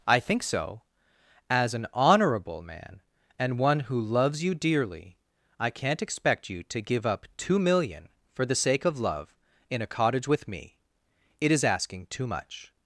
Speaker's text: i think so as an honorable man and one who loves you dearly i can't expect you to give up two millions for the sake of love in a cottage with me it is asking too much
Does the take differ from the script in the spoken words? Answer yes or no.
yes